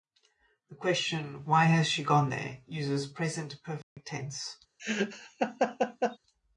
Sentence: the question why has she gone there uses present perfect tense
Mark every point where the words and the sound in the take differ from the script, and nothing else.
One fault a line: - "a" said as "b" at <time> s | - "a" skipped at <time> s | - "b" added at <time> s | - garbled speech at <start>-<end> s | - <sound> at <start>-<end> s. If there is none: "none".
- dropout at 3.8-4.0 s
- laugh at 4.8-6.2 s